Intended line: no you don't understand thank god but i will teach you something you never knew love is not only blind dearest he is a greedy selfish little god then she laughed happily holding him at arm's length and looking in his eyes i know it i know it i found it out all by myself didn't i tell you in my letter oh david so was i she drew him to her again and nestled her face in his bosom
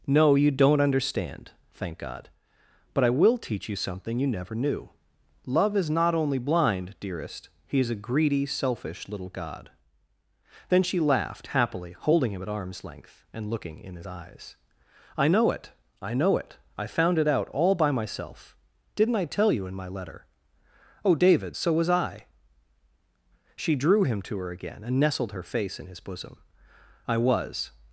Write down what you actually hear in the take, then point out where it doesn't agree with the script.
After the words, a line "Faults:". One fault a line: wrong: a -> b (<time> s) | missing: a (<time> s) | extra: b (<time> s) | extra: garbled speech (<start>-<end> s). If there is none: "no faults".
no you don't understand thank god but i will teach you something you never knew love is not only blind dearest he is a greedy selfish little god then she laughed happily holding him at arm's length and looking in his eyes i know it i know it i found it out all by myself didn't i tell you in my letter oh david so was i she drew him to her again and nestled her face in his bosom i was
Faults:
extra: i was (27.1 s)